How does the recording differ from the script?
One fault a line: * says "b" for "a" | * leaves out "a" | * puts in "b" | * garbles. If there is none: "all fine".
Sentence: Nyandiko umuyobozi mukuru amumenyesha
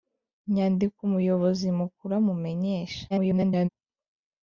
* garbles